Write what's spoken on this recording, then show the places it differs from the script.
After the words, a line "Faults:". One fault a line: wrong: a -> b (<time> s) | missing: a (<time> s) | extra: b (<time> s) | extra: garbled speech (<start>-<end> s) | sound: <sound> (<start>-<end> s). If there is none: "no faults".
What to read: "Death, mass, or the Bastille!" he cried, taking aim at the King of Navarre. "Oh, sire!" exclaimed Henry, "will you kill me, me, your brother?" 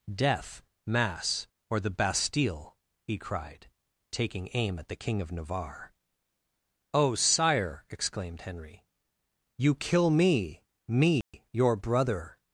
"Death, mass, or the Bastille!" he cried, taking aim at the King of Navarre. "Oh, sire!" exclaimed Henry, "you kill me, me, your brother?"
Faults:
missing: will (8.9 s)
sound: dropout (11.2-11.3 s)